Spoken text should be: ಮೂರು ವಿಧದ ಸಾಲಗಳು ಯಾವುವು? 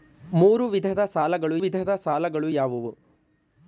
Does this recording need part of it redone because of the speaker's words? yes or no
yes